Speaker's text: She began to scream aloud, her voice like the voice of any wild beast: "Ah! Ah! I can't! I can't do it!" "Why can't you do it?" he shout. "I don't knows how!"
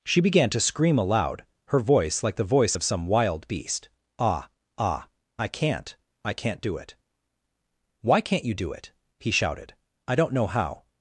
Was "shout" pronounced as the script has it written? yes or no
no